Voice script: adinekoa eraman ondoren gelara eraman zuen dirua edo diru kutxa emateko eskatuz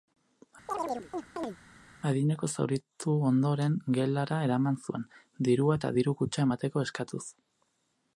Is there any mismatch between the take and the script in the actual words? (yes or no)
yes